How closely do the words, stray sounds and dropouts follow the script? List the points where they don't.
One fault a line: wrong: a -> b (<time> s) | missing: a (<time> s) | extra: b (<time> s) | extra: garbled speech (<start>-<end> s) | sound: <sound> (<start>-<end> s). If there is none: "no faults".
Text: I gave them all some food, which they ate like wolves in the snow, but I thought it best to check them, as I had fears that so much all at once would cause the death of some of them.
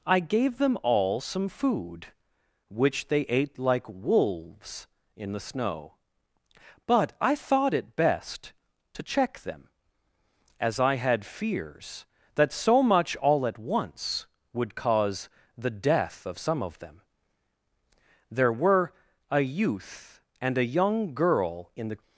extra: There were a youth and a young girl in the (18.3 s)